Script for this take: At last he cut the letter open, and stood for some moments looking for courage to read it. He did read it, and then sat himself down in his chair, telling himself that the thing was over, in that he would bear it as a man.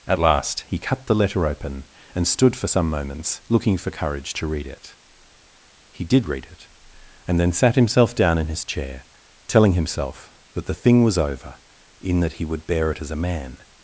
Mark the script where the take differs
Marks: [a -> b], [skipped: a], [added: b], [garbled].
At last he cut the letter open, and stood for some moments looking for courage to read it. He did read it, and then sat himself down in his chair, telling himself that the thing was over, in that he would bear it as a man.